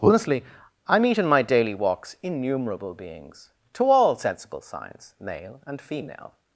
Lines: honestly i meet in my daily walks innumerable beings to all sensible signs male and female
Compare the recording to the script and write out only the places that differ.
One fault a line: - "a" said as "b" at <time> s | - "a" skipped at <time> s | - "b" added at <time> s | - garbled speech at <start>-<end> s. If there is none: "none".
none